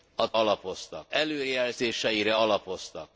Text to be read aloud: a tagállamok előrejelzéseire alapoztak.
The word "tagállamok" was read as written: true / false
false